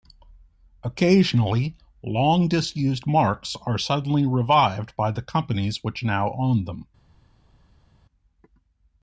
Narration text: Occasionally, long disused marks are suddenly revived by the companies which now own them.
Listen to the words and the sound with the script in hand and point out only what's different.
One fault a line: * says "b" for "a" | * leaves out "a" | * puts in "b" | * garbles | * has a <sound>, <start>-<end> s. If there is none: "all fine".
all fine